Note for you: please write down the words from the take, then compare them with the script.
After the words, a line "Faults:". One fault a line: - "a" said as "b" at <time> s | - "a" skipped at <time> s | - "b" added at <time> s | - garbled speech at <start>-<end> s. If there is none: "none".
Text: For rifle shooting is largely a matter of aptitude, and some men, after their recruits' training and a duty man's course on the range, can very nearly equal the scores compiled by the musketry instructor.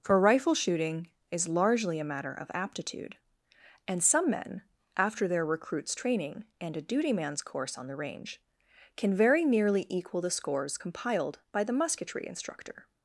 For rifle shooting is largely a matter of aptitude, and some men, after their recruits' training and a duty man's course on the range, can very nearly equal the scores compiled by the musketry instructor.
Faults:
none